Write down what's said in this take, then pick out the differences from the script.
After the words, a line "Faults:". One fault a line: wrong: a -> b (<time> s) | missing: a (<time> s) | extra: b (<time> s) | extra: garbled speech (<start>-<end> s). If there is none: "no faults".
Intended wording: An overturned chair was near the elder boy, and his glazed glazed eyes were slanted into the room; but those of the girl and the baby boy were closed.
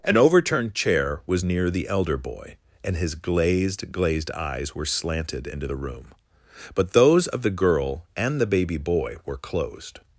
An overturned chair was near the elder boy, and his glazed glazed eyes were slanted into the room; but those of the girl and the baby boy were closed.
Faults:
no faults